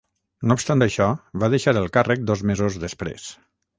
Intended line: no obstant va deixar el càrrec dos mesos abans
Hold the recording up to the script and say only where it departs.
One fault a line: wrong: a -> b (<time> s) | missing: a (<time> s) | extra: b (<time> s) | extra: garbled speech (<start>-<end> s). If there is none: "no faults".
extra: això (0.8 s)
wrong: abans -> després (2.8 s)